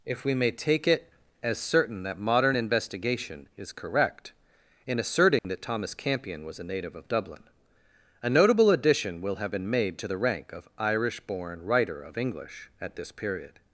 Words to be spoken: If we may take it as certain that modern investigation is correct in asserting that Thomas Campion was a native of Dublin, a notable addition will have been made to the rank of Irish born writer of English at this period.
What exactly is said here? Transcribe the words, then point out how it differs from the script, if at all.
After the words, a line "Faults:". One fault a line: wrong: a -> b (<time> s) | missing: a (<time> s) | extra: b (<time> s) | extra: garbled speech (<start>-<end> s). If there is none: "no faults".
If we may take it as certain that modern investigation is correct in asserting that Thomas Campion was a native of Dublin, a notable addition will have been made to the rank of Irish born writer of English at this period.
Faults:
no faults